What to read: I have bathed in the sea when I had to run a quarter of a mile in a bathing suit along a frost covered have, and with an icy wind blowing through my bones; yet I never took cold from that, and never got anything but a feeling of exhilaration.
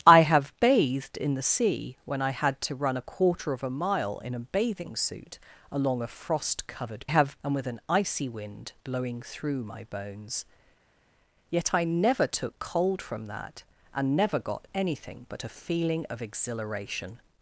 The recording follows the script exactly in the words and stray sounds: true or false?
true